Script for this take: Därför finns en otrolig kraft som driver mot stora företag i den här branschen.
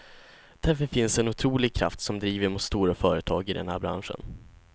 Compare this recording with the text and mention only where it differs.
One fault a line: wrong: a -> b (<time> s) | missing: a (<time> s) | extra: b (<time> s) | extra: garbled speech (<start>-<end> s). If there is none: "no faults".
no faults